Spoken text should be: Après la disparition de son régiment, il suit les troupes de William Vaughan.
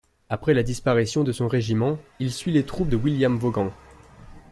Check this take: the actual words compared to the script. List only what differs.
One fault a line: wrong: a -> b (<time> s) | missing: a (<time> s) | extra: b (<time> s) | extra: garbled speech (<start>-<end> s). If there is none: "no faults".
no faults